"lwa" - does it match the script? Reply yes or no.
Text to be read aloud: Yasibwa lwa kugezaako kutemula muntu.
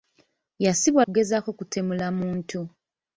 no